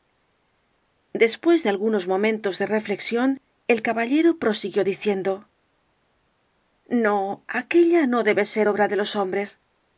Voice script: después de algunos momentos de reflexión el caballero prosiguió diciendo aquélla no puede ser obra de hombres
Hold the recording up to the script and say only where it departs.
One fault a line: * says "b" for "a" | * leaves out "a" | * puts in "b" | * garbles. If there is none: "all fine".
* puts in "no"
* says "debe" for "puede"
* puts in "los"